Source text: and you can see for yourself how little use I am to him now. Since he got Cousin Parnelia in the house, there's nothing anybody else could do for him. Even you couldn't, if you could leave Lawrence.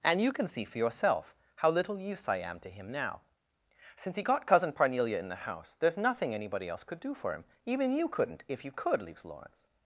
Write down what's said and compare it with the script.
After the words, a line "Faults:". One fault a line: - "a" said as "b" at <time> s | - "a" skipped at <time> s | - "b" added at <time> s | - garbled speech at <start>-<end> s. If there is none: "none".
and you can see for yourself how little use I am to him now. Since he got Cousin Parnelia in the house, there's nothing anybody else could do for him. Even you couldn't, if you could leaves Lawrence.
Faults:
- "leave" said as "leaves" at 9.0 s